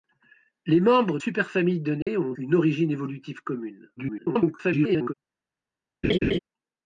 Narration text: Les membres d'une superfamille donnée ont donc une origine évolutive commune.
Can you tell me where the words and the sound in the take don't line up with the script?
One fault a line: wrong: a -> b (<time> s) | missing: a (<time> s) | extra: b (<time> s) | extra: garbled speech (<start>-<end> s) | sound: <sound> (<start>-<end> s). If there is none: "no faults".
missing: d'une (1.2 s)
sound: dropout (2.0-2.1 s)
missing: donc (2.3 s)
extra: garbled speech (4.0-5.1 s)
sound: laugh (6.0-6.4 s)